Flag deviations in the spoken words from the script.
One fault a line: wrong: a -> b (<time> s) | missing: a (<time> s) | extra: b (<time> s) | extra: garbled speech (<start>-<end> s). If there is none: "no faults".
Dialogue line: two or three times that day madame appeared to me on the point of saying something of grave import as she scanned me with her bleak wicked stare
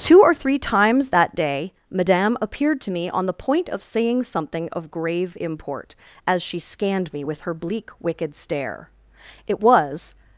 extra: it was (9.5 s)